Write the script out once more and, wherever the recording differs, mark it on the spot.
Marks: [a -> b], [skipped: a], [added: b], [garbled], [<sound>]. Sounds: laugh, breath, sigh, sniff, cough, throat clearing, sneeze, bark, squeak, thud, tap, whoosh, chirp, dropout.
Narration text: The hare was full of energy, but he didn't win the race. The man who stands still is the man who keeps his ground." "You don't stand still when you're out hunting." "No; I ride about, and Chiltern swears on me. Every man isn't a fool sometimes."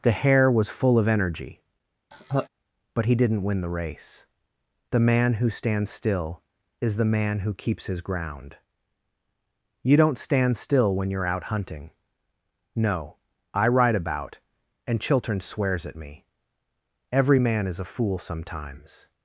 The hare was full of energy, [laugh] but he didn't win the race. The man who stands still is the man who keeps his ground." "You don't stand still when you're out hunting." "No; I ride about, and Chiltern swears [on -> at] me. Every man [isn't -> is] a fool sometimes."